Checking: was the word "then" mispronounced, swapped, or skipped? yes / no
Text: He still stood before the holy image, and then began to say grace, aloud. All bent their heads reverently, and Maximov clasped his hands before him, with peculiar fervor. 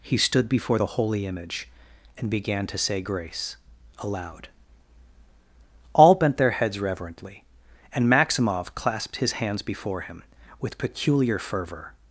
yes